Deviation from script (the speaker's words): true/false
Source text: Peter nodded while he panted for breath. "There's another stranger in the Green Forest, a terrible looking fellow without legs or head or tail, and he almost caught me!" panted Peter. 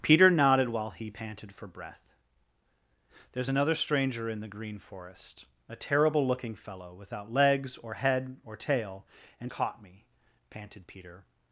true